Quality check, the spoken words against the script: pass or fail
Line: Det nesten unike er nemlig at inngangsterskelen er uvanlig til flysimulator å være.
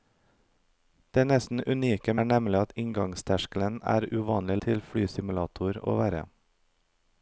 pass